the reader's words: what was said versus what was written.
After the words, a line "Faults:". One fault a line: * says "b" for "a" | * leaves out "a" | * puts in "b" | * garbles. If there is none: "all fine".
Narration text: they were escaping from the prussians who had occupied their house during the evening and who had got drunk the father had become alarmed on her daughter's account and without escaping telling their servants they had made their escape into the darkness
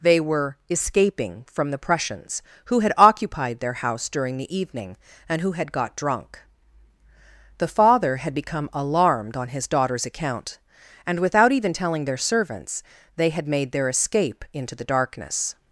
they were escaping from the prussians who had occupied their house during the evening and who had got drunk the father had become alarmed on his daughter's account and without even telling their servants they had made their escape into the darkness
Faults:
* says "his" for "her"
* says "even" for "escaping"